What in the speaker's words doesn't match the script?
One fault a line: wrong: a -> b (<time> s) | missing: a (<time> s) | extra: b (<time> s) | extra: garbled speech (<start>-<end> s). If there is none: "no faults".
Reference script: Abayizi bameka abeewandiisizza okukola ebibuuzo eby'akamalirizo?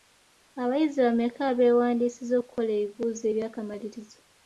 no faults